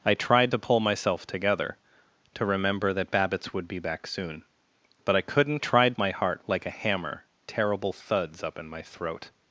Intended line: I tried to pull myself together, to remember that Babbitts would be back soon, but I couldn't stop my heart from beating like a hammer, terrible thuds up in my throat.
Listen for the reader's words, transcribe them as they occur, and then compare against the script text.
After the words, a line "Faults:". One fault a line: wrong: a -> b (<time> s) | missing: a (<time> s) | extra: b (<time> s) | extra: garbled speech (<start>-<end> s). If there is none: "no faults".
I tried to pull myself together, to remember that Babbitts would be back soon, but I couldn't tried my heart like a hammer, terrible thuds up in my throat.
Faults:
wrong: stop -> tried (5.6 s)
missing: from beating (6.4 s)